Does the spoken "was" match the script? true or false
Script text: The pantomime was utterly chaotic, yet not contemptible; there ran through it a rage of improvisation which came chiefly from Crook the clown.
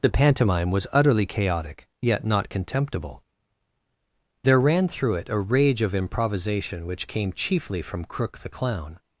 true